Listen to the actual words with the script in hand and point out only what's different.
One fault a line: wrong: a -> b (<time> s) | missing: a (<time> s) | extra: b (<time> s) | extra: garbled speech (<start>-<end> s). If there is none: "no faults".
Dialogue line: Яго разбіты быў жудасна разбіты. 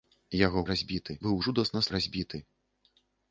no faults